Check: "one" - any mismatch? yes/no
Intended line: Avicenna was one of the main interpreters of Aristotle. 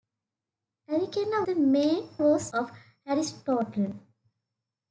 yes